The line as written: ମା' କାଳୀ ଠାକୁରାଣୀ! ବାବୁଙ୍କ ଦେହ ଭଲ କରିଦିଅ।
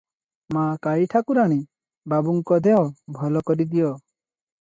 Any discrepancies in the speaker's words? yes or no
no